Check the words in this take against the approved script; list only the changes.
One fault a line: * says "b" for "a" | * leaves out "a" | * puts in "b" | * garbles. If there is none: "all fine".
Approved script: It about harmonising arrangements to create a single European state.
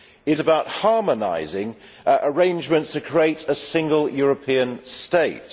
all fine